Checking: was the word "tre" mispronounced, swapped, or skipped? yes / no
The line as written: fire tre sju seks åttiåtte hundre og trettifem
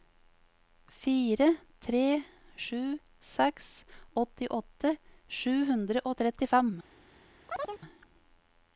no